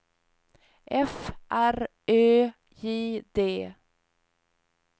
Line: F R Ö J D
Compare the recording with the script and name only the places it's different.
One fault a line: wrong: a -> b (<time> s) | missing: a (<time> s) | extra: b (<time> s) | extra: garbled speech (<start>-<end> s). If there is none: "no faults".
no faults